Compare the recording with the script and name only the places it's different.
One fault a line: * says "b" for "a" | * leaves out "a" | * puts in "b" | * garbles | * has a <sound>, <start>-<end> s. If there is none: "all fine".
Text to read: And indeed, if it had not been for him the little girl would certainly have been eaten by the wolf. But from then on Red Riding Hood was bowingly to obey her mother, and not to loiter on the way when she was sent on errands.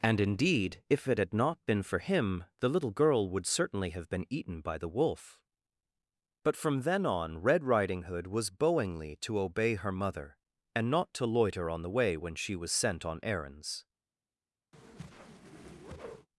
* has a whoosh, 14.7-16.3 s